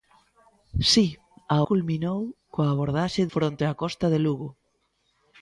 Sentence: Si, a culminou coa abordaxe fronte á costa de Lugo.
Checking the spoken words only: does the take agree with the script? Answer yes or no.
yes